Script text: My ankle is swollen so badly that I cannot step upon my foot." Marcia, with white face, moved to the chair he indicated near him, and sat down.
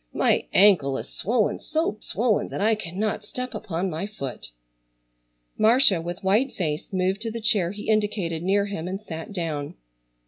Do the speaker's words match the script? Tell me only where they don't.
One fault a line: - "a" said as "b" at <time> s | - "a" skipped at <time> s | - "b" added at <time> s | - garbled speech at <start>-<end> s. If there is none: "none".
- "badly" said as "swollen" at 2.0 s